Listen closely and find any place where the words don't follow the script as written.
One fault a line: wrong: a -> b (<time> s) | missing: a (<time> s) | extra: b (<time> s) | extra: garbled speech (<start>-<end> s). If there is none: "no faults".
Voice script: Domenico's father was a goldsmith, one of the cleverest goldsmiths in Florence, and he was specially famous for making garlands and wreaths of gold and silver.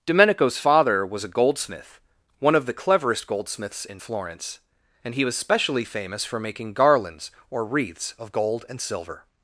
wrong: and -> or (7.5 s)